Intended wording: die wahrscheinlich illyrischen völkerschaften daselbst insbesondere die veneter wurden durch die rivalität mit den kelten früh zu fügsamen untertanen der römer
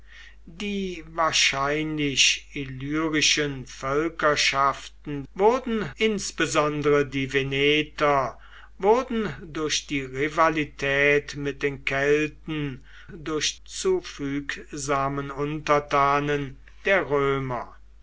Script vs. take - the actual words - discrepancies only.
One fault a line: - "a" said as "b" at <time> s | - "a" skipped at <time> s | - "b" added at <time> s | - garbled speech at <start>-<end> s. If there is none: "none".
- "daselbst" said as "wurden" at 5.3 s
- "früh" said as "durch" at 13.1 s